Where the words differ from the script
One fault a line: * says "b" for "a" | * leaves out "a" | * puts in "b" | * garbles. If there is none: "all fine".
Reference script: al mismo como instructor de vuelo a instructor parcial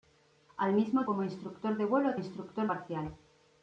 all fine